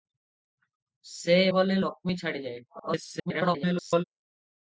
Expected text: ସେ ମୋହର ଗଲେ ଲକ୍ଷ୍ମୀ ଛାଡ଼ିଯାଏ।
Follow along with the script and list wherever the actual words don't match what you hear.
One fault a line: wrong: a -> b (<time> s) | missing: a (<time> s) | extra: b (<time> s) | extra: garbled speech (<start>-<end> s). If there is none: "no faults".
missing: ମୋହର (1.4 s)
extra: garbled speech (2.7-4.0 s)